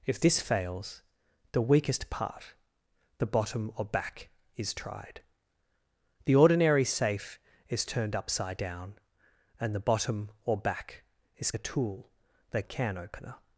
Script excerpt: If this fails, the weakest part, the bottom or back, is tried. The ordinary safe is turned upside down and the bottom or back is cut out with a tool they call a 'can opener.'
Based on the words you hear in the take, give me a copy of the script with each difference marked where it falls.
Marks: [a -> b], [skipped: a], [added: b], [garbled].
If this fails, the weakest part, the bottom or back, is tried. The ordinary safe is turned upside down and the bottom or back is [skipped: cut out with] a tool they [skipped: call] a 'can opener.'